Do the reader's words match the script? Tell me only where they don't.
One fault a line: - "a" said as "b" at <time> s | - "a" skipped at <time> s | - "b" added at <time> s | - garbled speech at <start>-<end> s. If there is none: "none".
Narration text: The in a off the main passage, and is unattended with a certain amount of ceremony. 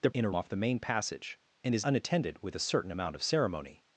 none